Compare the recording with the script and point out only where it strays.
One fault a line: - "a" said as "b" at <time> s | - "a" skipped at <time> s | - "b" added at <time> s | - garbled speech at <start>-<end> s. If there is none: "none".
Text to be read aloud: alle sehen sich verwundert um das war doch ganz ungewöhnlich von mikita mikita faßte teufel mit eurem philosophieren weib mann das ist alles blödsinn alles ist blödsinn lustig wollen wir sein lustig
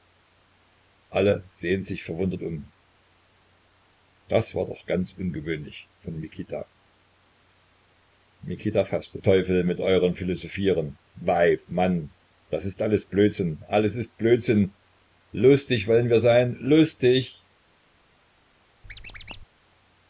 none